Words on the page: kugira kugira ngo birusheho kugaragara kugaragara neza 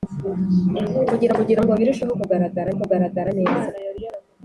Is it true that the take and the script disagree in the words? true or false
false